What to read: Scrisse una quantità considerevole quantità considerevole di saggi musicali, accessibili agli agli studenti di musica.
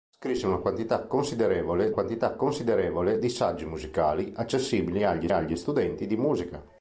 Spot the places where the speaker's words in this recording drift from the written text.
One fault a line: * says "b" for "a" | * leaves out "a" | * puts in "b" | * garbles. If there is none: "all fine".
all fine